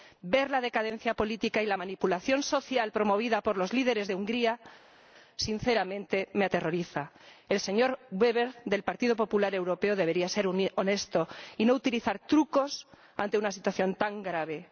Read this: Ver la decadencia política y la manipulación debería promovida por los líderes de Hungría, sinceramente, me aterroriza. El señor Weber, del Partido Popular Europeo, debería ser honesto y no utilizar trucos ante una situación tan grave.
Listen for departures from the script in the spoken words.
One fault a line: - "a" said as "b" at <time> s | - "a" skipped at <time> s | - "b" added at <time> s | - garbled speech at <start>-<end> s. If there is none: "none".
- "debería" said as "social" at 2.4 s